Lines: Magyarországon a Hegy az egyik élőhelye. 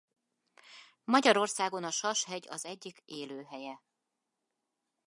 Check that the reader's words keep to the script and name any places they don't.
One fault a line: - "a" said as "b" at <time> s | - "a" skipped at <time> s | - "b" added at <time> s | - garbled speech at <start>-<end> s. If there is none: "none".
- "Sas" added at 1.9 s